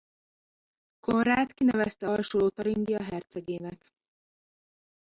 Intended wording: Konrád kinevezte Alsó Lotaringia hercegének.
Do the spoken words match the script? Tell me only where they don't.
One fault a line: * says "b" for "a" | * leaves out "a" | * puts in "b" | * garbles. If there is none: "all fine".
all fine